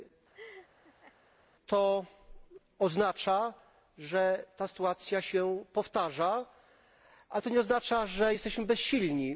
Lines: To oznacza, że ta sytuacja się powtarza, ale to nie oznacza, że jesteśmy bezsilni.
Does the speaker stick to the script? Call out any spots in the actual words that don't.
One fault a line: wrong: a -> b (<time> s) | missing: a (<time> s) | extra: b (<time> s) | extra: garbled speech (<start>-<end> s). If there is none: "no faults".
no faults